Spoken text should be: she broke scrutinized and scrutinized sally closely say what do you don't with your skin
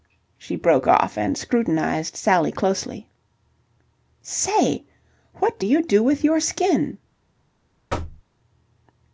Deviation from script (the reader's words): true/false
true